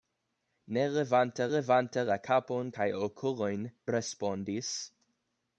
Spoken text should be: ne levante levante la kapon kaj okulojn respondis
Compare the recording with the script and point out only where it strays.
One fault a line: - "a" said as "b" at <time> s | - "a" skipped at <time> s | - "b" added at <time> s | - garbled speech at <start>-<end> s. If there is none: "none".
none